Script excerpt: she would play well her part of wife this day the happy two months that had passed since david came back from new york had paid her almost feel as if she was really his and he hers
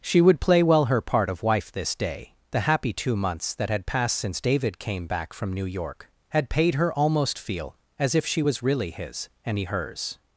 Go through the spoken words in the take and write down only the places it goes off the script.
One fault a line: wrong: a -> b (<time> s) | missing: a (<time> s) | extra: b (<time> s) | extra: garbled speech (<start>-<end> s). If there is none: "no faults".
no faults